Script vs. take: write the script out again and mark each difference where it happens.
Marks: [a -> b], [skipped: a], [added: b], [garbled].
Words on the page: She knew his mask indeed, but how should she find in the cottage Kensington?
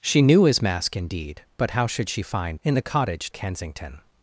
She knew his mask indeed, but how should she find in the cottage Kensington?